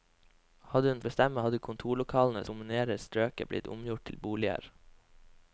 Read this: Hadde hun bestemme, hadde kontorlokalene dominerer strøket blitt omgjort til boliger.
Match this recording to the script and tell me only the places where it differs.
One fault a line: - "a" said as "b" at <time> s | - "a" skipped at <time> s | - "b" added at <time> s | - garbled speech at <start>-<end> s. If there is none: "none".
none